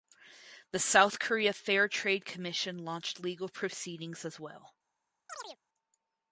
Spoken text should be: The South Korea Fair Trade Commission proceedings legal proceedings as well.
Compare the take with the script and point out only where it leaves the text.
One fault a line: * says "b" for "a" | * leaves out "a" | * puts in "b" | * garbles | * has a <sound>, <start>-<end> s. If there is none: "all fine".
* says "launched" for "proceedings"
* has a chirp, 5.3-5.6 s